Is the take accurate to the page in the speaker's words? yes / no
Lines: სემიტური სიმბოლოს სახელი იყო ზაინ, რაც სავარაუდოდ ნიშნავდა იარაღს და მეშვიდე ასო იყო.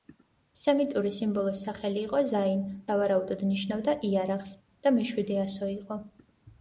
no